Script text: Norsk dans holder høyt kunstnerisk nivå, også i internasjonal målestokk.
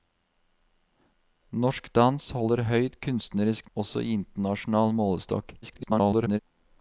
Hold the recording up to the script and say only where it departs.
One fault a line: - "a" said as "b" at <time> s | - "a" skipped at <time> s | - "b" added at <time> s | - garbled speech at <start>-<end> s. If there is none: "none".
- "nivå" skipped at 3.7 s
- garbled speech at 5.6-6.4 s